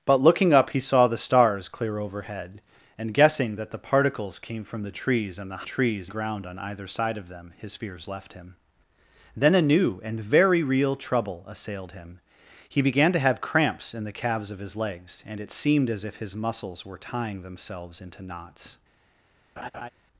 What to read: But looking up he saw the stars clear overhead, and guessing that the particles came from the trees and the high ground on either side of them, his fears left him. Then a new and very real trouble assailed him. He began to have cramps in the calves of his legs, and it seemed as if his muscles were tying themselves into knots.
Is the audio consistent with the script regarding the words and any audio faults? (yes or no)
no